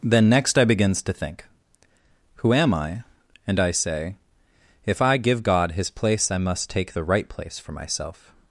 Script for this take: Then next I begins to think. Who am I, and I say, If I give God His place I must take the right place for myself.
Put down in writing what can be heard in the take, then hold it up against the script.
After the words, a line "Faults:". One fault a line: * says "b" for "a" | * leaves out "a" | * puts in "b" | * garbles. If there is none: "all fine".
Then next I begins to think. Who am I, and I say, If I give God His place I must take the right place for myself.
Faults:
all fine